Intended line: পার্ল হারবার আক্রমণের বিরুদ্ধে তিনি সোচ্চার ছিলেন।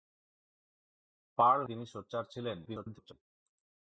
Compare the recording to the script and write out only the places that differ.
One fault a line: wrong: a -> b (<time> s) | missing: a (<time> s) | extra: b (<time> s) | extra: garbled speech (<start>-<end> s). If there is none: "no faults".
missing: হারবার আক্রমণের বিরুদ্ধে (1.6 s)
extra: garbled speech (2.7-3.1 s)